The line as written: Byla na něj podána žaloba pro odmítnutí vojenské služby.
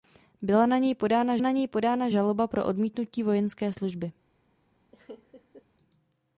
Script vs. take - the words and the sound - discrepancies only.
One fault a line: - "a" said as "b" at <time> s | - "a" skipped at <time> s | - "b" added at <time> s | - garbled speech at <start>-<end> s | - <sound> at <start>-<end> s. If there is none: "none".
- "na něj podána" added at 1.4 s
- laugh at 4.9-5.7 s